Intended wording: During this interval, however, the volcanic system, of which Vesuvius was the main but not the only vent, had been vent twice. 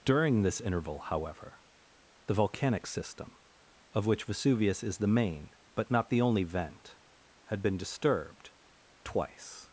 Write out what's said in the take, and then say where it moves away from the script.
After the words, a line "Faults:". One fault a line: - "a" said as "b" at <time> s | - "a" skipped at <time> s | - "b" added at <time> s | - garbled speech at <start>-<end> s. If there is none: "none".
During this interval, however, the volcanic system, of which Vesuvius is the main but not the only vent, had been disturbed twice.
Faults:
- "was" said as "is" at 4.8 s
- "vent" said as "disturbed" at 7.8 s